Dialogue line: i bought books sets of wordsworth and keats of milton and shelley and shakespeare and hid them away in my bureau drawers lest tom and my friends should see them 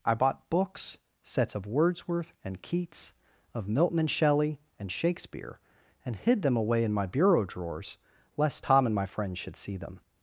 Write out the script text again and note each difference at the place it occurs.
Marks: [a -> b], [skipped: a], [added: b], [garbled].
i bought books sets of wordsworth and keats of milton and shelley and shakespeare and hid them away in my bureau drawers lest tom and my friends should see them